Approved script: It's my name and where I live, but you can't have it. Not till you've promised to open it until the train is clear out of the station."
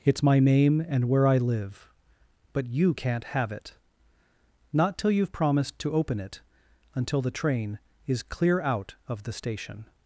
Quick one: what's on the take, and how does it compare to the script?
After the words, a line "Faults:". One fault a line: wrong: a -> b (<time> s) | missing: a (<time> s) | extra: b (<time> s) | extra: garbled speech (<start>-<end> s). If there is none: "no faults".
It's my name and where I live, but you can't have it. Not till you've promised to open it until the train is clear out of the station."
Faults:
no faults